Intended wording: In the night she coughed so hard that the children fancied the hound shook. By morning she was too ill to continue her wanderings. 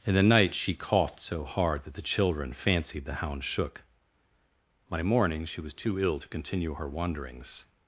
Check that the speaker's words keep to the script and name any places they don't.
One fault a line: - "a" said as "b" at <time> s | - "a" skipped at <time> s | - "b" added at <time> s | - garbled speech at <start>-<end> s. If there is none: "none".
none